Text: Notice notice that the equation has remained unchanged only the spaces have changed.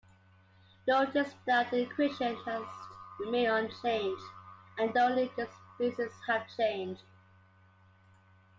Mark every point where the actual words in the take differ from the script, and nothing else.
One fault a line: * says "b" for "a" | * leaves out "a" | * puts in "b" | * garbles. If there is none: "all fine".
* leaves out "notice"
* puts in "and"